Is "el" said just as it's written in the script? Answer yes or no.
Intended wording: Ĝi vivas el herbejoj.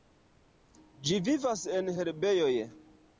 no